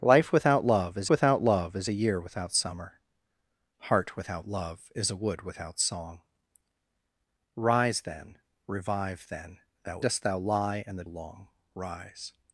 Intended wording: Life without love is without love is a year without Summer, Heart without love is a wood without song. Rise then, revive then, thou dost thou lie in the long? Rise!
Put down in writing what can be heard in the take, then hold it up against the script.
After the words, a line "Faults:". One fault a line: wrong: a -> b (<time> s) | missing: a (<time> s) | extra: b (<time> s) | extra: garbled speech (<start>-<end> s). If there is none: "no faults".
Life without love is without love is a year without Summer, Heart without love is a wood without song. Rise then, revive then, thou dost thou lie in the long? Rise!
Faults:
no faults